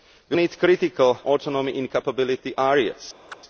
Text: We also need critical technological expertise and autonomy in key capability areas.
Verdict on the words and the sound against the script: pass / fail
fail